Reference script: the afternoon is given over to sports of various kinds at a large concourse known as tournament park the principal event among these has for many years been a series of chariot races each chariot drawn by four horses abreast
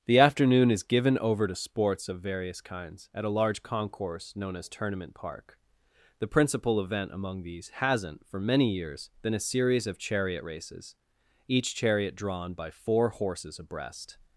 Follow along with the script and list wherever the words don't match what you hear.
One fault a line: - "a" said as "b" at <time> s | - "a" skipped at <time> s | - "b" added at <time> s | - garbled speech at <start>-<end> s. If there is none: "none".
- "has" said as "hasn't" at 7.7 s